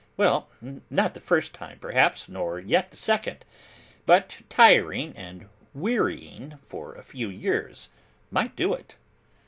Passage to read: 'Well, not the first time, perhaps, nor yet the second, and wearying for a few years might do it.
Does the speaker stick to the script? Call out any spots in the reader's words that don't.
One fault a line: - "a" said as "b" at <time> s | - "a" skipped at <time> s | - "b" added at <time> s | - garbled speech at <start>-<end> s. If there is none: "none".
- "but tiring" added at 4.1 s